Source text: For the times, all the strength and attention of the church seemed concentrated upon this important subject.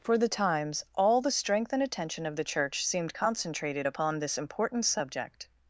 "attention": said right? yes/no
yes